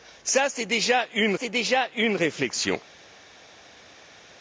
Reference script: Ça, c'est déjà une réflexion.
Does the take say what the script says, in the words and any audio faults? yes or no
no